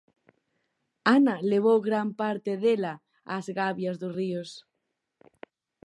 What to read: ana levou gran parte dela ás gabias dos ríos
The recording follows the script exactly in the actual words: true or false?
true